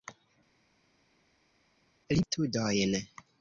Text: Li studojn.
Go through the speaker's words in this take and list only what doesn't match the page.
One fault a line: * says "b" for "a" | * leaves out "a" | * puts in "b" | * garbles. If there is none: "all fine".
all fine